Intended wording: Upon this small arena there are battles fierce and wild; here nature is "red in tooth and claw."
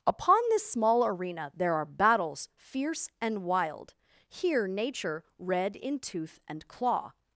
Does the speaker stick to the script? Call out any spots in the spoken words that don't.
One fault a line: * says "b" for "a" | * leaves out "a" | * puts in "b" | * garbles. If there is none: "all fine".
* leaves out "is"